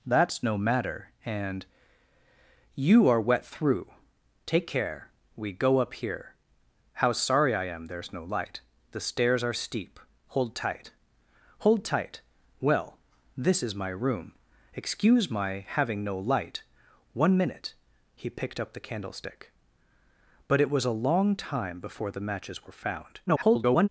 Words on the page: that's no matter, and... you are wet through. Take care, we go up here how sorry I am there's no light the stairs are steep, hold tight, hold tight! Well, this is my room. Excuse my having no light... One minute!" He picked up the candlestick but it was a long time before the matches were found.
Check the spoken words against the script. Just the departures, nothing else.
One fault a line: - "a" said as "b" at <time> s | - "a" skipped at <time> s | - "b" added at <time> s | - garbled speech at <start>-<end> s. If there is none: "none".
- garbled speech at 23.3-23.9 s